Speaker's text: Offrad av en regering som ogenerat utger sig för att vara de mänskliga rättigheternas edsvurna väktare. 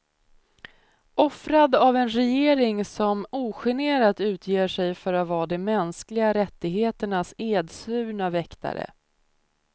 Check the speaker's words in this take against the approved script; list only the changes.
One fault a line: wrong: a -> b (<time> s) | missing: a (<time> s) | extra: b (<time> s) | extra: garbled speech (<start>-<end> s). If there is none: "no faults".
no faults